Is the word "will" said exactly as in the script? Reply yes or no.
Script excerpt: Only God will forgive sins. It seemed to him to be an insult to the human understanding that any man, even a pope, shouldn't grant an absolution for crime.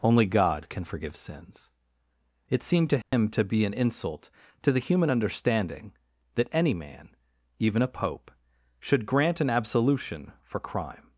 no